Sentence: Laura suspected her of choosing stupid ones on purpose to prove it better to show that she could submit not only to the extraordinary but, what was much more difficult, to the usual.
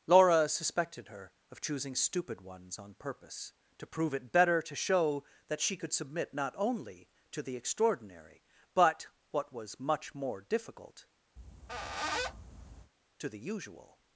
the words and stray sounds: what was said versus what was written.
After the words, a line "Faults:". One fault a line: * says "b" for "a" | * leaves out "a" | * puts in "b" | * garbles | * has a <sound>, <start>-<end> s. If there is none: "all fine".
Laura suspected her of choosing stupid ones on purpose to prove it better to show that she could submit not only to the extraordinary but, what was much more difficult, to the usual.
Faults:
* has a squeak, 11.4-12.9 s